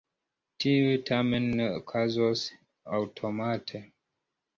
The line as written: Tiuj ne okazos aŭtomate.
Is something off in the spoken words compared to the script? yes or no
yes